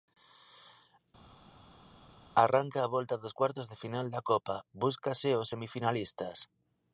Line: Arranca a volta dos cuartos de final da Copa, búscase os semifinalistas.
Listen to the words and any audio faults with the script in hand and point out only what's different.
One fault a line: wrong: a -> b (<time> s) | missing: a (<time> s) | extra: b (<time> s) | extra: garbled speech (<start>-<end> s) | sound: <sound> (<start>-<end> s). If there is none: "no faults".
no faults